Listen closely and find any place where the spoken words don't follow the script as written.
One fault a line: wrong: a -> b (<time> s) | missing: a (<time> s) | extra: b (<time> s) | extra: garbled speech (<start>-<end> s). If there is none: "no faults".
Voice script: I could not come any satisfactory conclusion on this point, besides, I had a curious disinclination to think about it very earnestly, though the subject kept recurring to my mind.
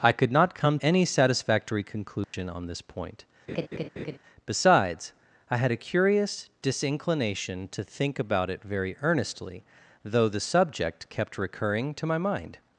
no faults